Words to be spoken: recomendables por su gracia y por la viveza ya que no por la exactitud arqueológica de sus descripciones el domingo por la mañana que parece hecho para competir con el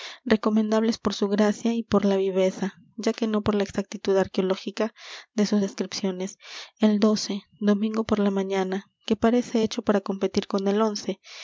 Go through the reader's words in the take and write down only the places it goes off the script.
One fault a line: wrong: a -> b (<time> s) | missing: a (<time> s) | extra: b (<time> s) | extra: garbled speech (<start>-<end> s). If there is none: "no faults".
no faults